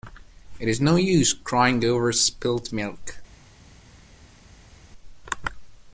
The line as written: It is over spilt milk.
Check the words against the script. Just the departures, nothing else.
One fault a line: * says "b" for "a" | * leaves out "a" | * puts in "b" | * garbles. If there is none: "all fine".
* puts in "no use crying"